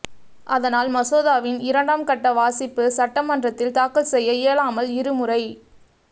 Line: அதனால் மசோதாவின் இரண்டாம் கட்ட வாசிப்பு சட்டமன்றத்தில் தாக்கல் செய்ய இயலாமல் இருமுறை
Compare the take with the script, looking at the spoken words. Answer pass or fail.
pass